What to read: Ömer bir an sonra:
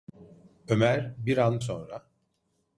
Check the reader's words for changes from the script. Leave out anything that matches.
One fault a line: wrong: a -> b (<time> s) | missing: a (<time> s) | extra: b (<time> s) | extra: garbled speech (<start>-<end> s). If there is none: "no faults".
no faults